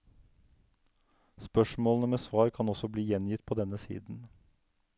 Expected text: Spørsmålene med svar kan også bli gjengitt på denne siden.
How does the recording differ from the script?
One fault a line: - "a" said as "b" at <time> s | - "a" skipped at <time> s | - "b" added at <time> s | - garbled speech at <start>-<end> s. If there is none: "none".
none